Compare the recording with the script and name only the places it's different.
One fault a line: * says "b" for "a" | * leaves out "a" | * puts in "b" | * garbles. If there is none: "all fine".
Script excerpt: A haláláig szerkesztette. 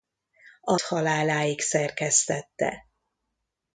all fine